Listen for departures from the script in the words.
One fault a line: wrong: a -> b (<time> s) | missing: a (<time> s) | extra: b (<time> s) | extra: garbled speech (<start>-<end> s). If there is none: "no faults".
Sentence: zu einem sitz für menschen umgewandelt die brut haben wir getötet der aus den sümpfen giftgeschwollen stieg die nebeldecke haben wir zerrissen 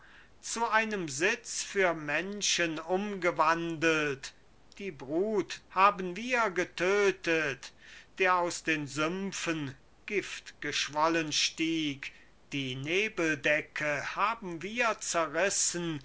no faults